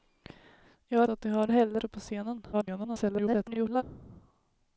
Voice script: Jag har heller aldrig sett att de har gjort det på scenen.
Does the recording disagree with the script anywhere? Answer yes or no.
yes